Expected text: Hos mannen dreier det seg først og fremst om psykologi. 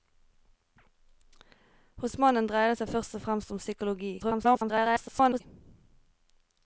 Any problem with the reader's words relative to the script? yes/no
yes